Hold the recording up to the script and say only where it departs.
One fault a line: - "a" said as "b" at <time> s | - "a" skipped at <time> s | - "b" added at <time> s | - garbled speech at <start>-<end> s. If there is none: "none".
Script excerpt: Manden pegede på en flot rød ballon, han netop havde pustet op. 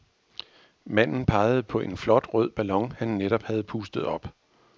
none